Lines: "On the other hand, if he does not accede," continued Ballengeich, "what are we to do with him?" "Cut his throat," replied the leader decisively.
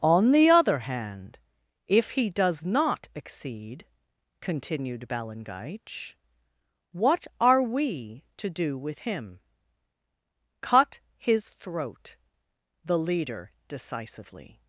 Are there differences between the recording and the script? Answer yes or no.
yes